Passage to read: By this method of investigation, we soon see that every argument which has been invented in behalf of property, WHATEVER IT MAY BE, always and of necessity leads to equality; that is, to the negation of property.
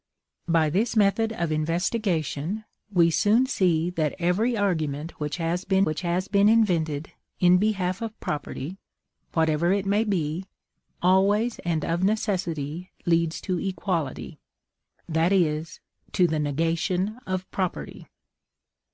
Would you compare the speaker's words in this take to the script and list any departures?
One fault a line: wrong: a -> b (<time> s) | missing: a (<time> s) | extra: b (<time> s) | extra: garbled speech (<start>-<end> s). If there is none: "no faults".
extra: which has been (5.8 s)